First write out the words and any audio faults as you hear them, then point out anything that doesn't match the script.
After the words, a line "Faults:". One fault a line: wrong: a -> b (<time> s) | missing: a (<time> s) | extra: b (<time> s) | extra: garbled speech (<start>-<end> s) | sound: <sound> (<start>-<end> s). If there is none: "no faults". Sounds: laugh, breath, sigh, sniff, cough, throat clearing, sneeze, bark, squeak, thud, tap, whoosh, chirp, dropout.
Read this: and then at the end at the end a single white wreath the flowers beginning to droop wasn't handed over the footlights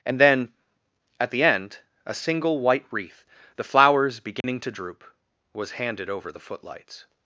and then at the end a single white wreath the flowers beginning to droop was handed over the footlights
Faults:
missing: at the end (1.8 s)
sound: dropout (4.4-4.4 s)
wrong: wasn't -> was (5.5 s)